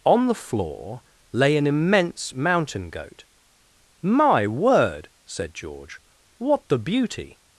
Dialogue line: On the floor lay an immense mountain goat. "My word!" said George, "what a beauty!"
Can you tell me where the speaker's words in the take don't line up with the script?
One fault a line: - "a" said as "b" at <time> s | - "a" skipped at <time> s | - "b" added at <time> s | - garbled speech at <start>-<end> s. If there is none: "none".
- "a" said as "the" at 6.7 s